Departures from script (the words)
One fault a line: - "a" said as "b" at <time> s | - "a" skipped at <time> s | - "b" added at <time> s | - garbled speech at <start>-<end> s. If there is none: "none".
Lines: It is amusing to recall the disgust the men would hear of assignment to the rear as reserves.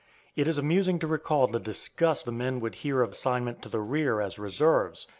none